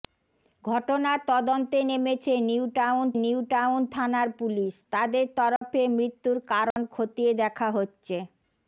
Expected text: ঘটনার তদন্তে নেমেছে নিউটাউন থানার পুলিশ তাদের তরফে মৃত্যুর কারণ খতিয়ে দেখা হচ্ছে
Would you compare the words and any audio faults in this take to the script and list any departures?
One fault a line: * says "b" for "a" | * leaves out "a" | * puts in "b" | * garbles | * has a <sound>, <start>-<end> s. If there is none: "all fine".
* puts in "নিউটাউন"
* has a dropout, 5.6-5.6 s
* has a dropout, 6.7-6.8 s